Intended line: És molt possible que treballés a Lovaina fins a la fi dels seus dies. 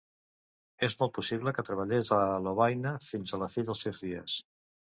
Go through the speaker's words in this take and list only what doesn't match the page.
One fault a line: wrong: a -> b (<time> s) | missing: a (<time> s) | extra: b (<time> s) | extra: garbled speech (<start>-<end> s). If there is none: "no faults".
no faults